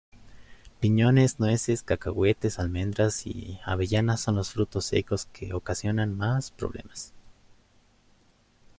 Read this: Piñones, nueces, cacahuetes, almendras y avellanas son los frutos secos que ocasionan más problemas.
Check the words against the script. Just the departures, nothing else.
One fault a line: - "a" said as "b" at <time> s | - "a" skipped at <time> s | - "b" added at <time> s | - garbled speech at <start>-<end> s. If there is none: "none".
none